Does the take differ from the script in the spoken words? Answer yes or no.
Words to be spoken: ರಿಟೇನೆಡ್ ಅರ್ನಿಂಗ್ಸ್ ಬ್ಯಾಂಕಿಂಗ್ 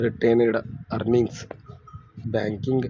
no